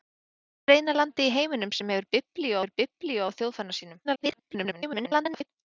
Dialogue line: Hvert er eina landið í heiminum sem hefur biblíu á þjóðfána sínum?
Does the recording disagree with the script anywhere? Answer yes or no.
yes